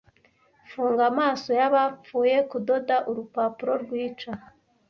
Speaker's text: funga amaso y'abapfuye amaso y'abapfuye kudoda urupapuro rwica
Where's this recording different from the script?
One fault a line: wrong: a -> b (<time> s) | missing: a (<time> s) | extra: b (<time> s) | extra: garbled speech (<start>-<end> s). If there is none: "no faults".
missing: amaso y'abapfuye (2.4 s)